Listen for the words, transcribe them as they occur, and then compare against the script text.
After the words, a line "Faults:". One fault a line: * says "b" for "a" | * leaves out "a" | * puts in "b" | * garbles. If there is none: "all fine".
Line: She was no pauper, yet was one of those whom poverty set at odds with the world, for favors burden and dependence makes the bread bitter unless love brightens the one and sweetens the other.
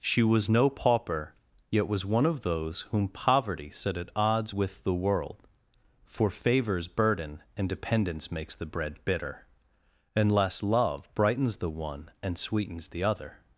She was no pauper, yet was one of those whom poverty set at odds with the world, for favors burden and dependence makes the bread bitter unless love brightens the one and sweetens the other.
Faults:
all fine